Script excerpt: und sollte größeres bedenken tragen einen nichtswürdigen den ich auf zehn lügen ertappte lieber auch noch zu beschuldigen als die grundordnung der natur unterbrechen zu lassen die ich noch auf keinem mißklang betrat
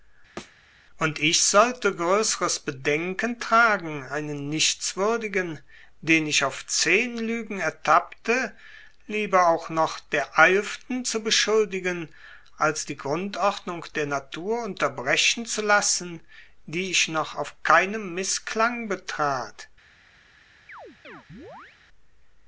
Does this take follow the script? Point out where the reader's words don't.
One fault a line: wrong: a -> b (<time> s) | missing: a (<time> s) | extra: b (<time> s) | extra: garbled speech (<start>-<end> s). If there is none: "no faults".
extra: ich (1.2 s)
extra: der eilften (10.0 s)